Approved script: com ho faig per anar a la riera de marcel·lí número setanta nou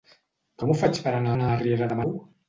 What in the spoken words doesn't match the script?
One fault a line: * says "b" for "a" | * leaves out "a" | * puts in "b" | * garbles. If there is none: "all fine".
* puts in "anar"
* leaves out "marcel·lí número setanta"